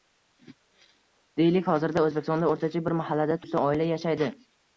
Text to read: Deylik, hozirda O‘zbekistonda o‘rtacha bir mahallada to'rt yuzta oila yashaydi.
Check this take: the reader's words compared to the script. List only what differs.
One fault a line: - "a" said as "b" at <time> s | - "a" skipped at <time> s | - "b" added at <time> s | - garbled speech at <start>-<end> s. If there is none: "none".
- "to'rt" skipped at 3.4 s